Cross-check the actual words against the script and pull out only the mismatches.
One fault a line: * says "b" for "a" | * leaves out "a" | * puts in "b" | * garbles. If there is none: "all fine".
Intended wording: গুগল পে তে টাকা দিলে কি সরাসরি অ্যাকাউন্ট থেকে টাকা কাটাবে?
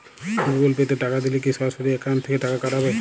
all fine